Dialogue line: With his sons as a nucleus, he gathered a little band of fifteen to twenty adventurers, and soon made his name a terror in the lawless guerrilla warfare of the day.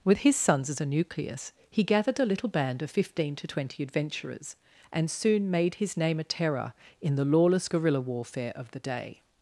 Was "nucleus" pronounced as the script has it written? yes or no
yes